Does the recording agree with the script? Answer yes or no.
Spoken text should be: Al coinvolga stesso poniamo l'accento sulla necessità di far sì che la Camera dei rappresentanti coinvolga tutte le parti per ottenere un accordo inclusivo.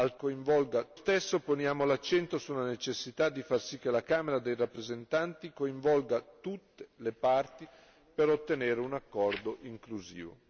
yes